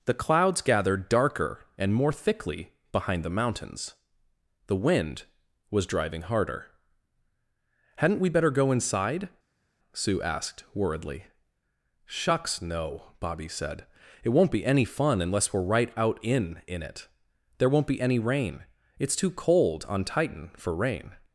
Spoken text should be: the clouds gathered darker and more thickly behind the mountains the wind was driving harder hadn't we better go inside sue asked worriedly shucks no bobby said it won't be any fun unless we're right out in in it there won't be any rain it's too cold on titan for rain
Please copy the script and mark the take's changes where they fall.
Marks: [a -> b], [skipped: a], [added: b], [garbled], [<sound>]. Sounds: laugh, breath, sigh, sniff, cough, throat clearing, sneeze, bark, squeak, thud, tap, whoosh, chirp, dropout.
the clouds gathered darker and more thickly behind the mountains the wind was driving harder hadn't we better go inside sue asked worriedly shucks no bobby said it won't be any fun unless we're right out in in it there won't be any rain it's too cold on titan for rain